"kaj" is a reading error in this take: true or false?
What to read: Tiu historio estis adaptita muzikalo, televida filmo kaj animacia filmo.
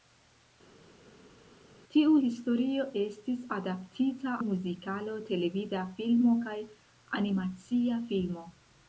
false